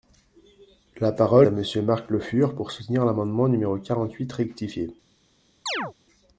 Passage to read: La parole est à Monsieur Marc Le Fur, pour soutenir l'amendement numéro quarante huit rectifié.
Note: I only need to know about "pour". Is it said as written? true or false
true